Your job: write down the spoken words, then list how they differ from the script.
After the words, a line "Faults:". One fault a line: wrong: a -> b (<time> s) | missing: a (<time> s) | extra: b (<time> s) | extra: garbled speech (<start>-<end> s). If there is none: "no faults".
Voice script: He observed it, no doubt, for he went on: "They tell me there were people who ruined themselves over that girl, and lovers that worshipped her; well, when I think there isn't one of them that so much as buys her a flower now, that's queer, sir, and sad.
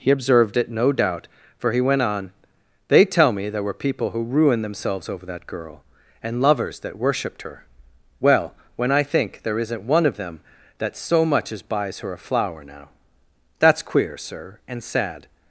He observed it, no doubt, for he went on: "They tell me there were people who ruined themselves over that girl, and lovers that worshipped her; well, when I think there isn't one of them that so much as buys her a flower now, that's queer, sir, and sad.
Faults:
no faults